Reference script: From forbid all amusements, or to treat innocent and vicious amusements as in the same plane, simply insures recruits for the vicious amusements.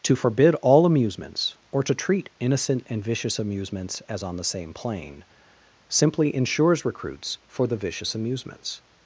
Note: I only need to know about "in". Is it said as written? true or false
false